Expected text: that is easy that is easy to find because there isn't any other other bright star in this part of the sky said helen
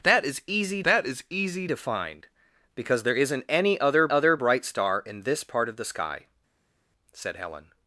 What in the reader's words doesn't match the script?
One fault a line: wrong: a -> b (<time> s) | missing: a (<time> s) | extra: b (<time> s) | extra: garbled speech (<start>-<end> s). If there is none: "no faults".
no faults